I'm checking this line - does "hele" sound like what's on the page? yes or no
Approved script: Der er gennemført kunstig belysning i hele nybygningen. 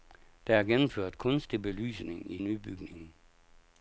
no